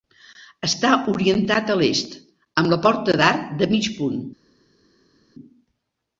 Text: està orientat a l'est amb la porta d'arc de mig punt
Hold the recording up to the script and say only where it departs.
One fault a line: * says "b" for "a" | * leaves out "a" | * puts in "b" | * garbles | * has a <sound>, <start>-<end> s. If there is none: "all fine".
all fine